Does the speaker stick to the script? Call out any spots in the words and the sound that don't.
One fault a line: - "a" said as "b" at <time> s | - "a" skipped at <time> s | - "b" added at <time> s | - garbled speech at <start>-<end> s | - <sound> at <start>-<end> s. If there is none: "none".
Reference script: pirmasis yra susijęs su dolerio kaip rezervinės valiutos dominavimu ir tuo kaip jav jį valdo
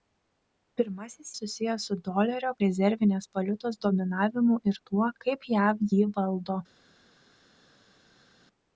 - "yra" skipped at 1.3 s
- "kaip" skipped at 2.5 s